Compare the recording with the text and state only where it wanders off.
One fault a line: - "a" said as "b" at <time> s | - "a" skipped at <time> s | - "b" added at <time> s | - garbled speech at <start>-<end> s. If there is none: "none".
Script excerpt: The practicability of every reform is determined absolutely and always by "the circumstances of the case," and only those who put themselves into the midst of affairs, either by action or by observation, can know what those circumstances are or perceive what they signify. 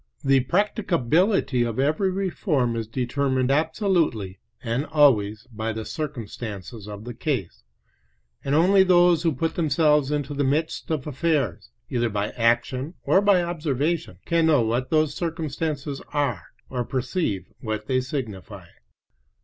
none